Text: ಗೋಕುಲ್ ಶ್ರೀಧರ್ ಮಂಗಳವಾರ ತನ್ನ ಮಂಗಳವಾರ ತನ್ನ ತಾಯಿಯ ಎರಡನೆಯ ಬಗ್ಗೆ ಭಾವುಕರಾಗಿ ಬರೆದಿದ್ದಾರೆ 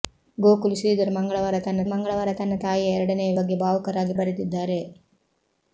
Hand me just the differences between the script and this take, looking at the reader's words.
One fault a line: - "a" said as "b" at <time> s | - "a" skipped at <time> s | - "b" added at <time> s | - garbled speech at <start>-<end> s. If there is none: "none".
none